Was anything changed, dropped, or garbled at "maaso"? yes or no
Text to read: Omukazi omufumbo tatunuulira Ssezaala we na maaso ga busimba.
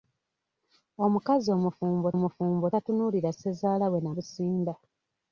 yes